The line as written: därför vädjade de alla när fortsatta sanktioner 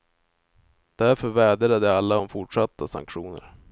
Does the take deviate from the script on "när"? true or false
true